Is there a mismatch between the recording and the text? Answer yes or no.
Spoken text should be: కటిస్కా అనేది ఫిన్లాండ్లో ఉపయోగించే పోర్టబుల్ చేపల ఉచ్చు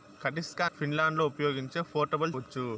yes